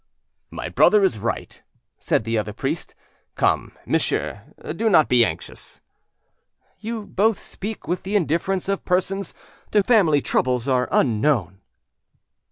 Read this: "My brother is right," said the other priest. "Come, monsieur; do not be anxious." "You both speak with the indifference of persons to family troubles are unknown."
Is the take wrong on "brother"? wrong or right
right